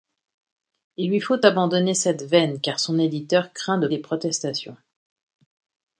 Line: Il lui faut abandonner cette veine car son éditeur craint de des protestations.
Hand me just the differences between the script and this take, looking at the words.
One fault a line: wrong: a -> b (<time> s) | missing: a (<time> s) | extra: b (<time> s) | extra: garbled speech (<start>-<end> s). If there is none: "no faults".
no faults